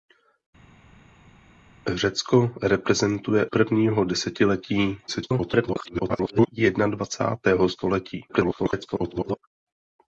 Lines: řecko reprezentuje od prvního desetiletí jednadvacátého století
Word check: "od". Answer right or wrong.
wrong